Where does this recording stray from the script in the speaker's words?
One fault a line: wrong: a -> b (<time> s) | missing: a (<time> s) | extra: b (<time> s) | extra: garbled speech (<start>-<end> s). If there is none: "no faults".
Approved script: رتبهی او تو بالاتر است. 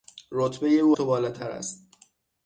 no faults